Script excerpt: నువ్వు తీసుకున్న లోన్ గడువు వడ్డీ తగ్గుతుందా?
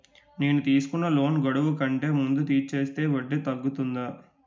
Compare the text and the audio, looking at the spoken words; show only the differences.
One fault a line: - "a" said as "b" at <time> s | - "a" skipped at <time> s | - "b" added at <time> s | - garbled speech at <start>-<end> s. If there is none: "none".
- "నువ్వు" said as "నేను" at 0.4 s
- "కంటే ముందే తీర్చేస్తే" added at 1.8 s